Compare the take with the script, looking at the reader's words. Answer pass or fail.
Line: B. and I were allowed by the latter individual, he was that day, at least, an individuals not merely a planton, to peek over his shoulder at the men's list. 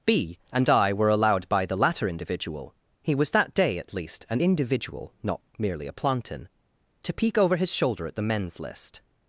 fail